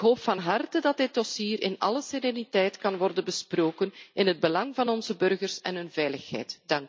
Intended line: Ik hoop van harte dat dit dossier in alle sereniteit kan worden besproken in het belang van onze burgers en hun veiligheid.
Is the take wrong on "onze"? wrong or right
right